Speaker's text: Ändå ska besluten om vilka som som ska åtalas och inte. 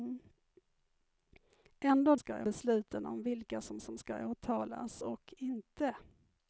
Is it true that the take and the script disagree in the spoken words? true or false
false